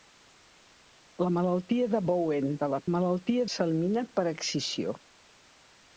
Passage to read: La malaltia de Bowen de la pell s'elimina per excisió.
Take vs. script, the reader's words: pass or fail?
fail